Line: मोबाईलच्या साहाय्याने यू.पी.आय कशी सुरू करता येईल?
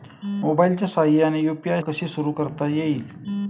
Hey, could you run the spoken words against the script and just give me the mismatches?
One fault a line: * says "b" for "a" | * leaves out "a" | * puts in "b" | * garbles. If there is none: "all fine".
all fine